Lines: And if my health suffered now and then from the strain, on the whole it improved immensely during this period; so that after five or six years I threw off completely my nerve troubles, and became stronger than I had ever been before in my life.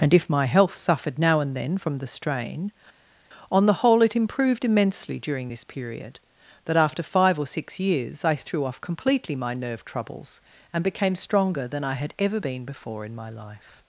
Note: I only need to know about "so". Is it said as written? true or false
false